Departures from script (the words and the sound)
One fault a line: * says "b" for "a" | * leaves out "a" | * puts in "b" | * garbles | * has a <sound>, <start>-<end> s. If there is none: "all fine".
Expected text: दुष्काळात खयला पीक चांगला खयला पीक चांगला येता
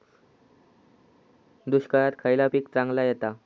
* leaves out "खयला पीक चांगला"